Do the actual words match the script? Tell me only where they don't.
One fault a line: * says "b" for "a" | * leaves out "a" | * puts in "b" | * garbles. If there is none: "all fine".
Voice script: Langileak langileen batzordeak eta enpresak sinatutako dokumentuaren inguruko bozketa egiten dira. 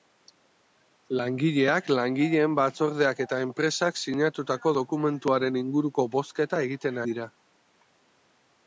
all fine